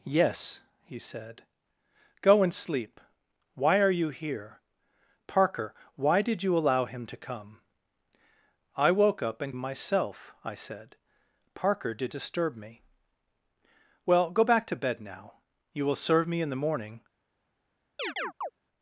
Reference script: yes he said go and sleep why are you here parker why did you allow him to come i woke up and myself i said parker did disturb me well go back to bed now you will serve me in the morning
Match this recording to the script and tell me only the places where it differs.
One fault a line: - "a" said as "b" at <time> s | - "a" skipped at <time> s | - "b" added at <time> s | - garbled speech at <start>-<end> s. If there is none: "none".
none